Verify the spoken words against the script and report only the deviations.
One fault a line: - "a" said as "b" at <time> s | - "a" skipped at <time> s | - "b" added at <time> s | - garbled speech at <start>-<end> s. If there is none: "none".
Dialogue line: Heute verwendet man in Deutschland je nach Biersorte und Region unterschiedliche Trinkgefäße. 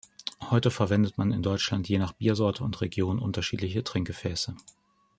none